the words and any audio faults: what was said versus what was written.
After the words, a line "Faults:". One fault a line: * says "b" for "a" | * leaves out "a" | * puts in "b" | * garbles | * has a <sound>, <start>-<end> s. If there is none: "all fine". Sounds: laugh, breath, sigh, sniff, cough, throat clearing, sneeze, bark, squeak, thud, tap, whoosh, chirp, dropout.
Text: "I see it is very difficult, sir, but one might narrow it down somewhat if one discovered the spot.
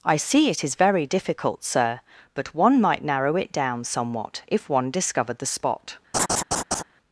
"I see it is very difficult, sir, but one might narrow it down somewhat if one discovered the spot.
Faults:
* has a laugh, 6.1-6.8 s